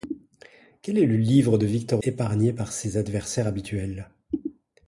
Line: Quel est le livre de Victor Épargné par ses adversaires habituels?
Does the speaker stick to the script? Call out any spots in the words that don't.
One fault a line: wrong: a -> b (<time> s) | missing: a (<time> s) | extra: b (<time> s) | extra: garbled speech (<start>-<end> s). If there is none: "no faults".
no faults